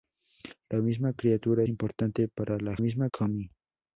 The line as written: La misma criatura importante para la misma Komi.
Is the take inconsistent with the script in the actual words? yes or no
no